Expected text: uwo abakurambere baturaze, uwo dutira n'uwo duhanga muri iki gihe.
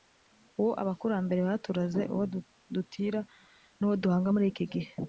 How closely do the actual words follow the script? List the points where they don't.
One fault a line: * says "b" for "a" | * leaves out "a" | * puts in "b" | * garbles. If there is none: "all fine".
all fine